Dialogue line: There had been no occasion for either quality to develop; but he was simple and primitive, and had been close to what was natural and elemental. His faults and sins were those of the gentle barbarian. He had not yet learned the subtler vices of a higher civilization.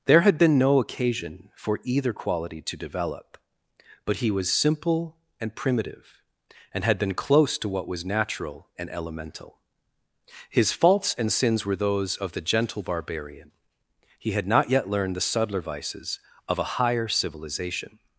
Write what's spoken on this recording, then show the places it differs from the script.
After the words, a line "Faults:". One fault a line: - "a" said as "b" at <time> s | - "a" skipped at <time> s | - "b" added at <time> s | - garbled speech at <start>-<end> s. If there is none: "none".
There had been no occasion for either quality to develop; but he was simple and primitive, and had been close to what was natural and elemental. His faults and sins were those of the gentle barbarian. He had not yet learned the subtler vices of a higher civilization.
Faults:
none